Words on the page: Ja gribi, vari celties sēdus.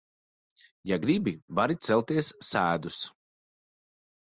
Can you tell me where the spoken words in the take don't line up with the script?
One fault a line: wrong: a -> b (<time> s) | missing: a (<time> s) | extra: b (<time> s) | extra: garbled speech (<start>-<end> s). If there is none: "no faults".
no faults